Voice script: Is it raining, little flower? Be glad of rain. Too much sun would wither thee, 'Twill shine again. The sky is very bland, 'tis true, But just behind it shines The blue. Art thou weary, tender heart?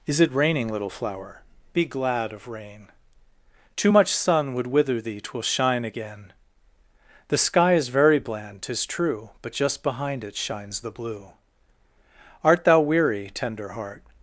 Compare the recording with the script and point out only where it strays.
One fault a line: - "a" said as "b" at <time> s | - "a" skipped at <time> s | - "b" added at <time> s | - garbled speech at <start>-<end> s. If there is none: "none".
none